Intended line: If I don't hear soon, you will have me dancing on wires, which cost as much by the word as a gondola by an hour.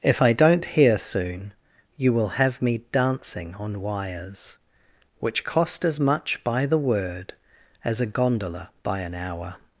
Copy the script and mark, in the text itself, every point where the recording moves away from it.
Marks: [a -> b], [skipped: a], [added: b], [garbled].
If I don't hear soon, you will have me dancing on wires, which cost as much by the word as a gondola by an hour.